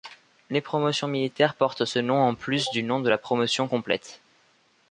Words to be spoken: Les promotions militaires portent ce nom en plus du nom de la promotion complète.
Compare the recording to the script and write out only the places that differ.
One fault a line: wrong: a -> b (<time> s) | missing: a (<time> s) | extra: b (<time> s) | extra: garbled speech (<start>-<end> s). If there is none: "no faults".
no faults